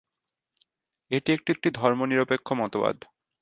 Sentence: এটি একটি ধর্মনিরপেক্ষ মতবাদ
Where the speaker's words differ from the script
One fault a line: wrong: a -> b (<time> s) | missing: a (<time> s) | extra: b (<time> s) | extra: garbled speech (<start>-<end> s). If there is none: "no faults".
extra: একটি (1.5 s)